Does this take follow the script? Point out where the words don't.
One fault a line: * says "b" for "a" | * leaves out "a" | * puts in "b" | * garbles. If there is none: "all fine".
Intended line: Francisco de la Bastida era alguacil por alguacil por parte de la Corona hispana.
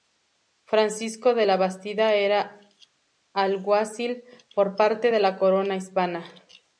* leaves out "alguacil por"